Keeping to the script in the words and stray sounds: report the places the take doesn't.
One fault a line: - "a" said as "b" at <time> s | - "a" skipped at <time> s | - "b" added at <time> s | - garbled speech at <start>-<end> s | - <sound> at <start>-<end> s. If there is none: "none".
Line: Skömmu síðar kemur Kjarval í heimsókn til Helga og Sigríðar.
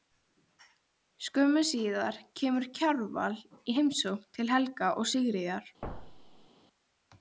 - thud at 5.8-6.5 s